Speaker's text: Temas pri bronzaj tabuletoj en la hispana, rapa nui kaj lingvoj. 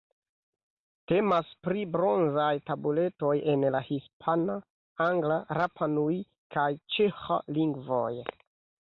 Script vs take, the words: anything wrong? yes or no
yes